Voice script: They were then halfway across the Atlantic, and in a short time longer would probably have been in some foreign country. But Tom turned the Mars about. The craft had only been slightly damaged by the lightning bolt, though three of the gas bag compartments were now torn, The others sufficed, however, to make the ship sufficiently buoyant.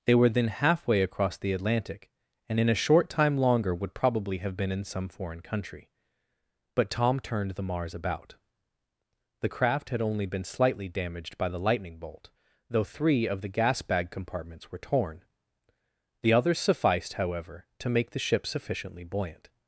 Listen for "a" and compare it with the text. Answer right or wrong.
right